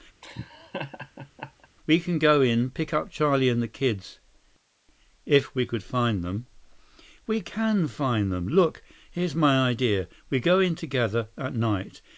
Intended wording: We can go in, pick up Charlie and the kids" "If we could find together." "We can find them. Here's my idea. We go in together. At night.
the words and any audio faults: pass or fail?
fail